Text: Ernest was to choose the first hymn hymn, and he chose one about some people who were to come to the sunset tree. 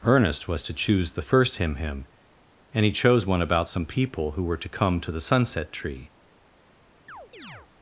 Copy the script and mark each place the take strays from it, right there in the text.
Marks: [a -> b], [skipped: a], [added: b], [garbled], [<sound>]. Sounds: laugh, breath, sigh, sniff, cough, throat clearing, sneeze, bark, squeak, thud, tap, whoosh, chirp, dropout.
Ernest was to choose the first hymn hymn, and he chose one about some people who were to come to the sunset tree. [chirp]